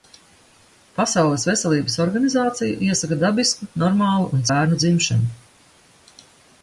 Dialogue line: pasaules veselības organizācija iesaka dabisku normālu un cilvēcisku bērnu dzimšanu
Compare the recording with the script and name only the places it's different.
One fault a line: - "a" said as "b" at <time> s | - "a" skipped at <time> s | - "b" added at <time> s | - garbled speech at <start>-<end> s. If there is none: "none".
- "cilvēcisku" skipped at 4.4 s